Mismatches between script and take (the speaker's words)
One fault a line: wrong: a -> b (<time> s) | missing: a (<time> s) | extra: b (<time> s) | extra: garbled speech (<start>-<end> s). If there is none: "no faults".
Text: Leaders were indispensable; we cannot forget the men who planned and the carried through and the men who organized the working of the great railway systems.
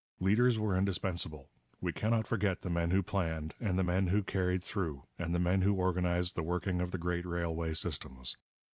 extra: men who (3.8 s)